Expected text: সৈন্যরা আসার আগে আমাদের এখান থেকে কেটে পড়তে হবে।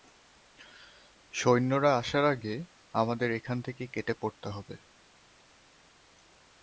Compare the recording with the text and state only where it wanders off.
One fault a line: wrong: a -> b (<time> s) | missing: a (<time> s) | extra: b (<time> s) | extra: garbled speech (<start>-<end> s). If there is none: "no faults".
no faults